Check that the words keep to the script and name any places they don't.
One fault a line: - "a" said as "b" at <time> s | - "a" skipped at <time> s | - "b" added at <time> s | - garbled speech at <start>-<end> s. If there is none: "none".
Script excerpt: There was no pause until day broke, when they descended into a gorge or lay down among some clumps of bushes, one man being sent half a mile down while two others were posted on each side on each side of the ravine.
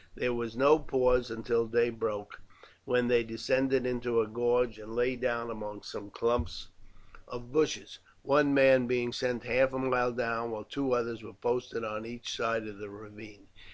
- "or" said as "and" at 4.8 s
- "on each side" skipped at 12.7 s